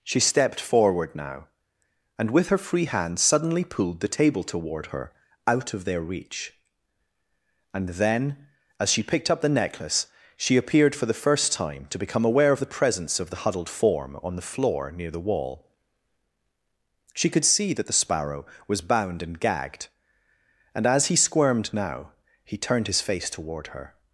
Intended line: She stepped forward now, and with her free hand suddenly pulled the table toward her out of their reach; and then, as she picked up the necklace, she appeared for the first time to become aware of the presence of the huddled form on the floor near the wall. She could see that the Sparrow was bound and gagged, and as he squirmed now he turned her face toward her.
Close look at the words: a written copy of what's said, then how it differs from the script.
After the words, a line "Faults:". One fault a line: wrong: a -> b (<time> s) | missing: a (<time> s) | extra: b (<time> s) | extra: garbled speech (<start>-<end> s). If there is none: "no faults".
She stepped forward now, and with her free hand suddenly pulled the table toward her out of their reach; and then, as she picked up the necklace, she appeared for the first time to become aware of the presence of the huddled form on the floor near the wall. She could see that the Sparrow was bound and gagged, and as he squirmed now he turned his face toward her.
Faults:
wrong: her -> his (22.9 s)